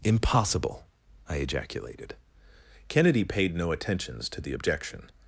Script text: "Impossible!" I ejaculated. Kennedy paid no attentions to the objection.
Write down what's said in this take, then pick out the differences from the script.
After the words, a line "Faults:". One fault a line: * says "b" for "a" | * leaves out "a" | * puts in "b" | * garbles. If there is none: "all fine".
"Impossible!" I ejaculated. Kennedy paid no attentions to the objection.
Faults:
all fine